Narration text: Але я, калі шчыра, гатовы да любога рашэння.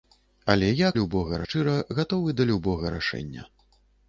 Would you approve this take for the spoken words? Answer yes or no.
no